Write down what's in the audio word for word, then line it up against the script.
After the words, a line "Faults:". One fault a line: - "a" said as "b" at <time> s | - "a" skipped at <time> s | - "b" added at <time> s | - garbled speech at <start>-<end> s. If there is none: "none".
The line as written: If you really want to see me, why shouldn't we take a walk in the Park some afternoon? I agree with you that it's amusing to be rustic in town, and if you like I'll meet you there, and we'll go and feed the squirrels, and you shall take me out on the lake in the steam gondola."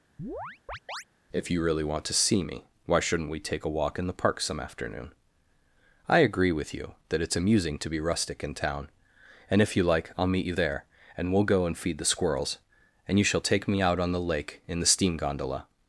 If you really want to see me, why shouldn't we take a walk in the Park some afternoon? I agree with you that it's amusing to be rustic in town, and if you like I'll meet you there, and we'll go and feed the squirrels, and you shall take me out on the lake in the steam gondola."
Faults:
none